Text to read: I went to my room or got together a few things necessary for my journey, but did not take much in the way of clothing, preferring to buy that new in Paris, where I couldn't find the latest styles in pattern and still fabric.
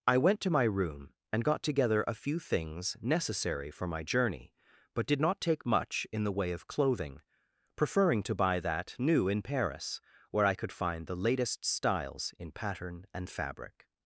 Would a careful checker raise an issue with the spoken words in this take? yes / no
yes